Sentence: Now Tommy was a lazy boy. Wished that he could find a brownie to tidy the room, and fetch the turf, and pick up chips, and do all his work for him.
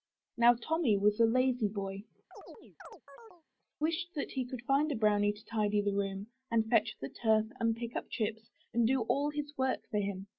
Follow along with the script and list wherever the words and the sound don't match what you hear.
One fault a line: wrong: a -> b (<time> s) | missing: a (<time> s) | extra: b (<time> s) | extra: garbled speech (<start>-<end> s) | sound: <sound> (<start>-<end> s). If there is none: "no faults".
sound: chirp (2.3-3.4 s)